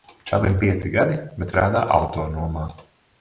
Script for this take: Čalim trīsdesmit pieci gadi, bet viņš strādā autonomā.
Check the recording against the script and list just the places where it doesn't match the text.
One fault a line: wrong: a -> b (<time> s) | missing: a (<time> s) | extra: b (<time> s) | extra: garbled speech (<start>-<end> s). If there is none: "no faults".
missing: trīsdesmit (0.6 s)
missing: viņš (1.5 s)